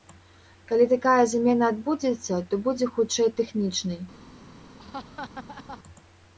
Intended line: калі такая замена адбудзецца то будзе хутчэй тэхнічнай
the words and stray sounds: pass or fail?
fail